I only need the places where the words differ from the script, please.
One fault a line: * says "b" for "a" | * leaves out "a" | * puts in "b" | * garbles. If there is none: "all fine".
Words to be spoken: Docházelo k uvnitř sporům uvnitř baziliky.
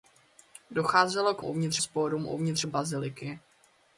all fine